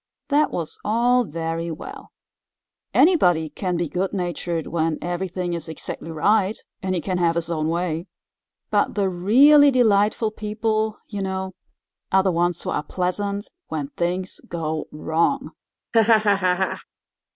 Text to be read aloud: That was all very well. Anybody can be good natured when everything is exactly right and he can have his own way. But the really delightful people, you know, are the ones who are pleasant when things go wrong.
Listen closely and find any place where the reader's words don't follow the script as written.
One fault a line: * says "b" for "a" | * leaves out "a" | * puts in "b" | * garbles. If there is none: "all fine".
all fine